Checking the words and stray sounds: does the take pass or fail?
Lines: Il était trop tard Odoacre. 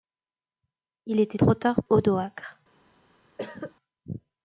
fail